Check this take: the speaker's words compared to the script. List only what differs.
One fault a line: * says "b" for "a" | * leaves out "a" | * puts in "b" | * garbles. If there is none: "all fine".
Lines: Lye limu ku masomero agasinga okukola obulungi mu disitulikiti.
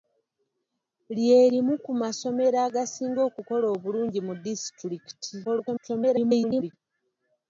* garbles